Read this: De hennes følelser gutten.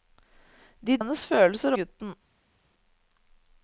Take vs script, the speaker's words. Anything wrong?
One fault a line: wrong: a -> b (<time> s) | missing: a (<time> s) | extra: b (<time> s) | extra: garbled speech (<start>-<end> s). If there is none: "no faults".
no faults